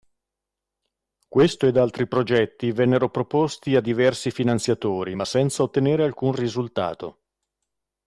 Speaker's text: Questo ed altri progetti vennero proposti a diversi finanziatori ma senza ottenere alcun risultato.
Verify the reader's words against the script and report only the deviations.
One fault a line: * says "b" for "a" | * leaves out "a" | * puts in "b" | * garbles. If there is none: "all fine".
all fine